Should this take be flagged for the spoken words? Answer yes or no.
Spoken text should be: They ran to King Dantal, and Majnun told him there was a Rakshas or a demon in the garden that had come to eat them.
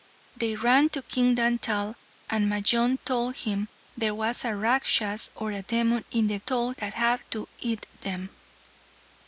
yes